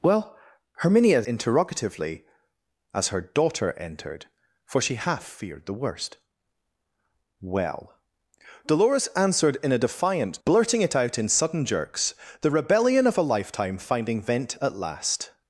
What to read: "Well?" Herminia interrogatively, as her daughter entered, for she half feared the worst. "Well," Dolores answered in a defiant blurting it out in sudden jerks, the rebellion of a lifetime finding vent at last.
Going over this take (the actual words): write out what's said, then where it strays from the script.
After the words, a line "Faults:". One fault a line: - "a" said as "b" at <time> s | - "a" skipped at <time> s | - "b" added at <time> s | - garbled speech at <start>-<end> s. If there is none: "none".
"Well?" Herminia interrogatively, as her daughter entered, for she half feared the worst. "Well," Dolores answered in a defiant blurting it out in sudden jerks, the rebellion of a lifetime finding vent at last.
Faults:
none